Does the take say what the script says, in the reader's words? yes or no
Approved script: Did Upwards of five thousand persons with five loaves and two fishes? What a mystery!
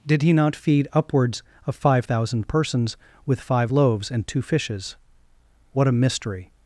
no